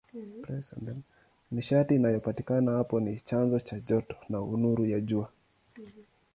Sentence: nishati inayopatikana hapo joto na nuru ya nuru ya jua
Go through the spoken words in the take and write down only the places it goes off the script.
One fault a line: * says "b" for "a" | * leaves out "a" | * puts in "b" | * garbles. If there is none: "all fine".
* puts in "ni chanzo cha"
* leaves out "nuru ya"